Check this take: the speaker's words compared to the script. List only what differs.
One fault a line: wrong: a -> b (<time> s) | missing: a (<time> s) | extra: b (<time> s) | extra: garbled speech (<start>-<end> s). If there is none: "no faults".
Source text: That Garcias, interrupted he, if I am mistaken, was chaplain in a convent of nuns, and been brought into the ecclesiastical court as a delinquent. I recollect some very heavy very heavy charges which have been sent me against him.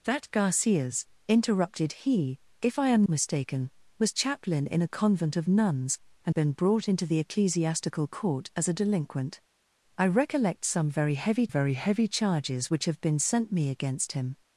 no faults